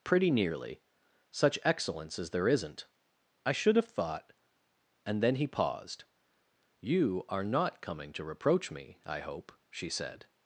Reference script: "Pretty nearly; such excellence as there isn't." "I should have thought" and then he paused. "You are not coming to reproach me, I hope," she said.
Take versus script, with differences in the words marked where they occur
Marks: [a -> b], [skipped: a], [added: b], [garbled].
"Pretty nearly; such excellence as there isn't." "I should have thought" and then he paused. "You are not coming to reproach me, I hope," she said.